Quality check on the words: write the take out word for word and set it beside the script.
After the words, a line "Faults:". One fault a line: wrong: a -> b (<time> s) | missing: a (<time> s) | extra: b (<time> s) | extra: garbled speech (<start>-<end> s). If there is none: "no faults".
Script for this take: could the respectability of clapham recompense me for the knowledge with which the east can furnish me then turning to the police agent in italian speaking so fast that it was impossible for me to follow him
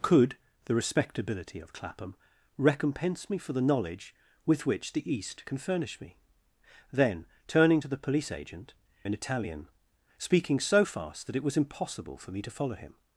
could the respectability of clapham recompense me for the knowledge with which the east can furnish me then turning to the police agent in italian speaking so fast that it was impossible for me to follow him
Faults:
no faults